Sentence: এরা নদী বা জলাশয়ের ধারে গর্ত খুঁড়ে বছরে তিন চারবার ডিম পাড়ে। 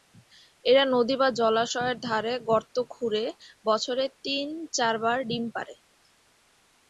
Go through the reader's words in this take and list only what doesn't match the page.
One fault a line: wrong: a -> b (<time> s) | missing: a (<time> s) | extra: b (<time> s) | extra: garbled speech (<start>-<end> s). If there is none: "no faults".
no faults